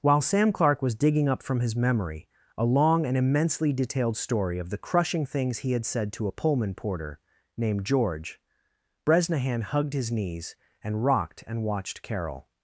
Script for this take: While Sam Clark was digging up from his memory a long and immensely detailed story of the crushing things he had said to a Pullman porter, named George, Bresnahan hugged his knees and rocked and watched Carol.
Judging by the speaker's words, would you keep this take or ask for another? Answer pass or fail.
pass